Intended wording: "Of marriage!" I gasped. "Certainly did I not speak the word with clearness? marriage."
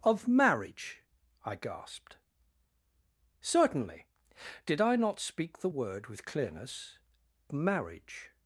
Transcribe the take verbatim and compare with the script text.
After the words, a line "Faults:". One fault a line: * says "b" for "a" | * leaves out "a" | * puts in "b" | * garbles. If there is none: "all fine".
"Of marriage!" I gasped. "Certainly did I not speak the word with clearness? marriage."
Faults:
all fine